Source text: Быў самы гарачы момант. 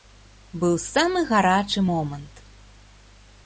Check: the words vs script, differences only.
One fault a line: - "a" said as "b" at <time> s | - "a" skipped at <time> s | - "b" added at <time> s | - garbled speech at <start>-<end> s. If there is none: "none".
none